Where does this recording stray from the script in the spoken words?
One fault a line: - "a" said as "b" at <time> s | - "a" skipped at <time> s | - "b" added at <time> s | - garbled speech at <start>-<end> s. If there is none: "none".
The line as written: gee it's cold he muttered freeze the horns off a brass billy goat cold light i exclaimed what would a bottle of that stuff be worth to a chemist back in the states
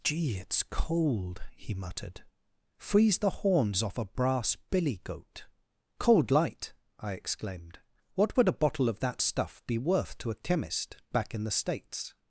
none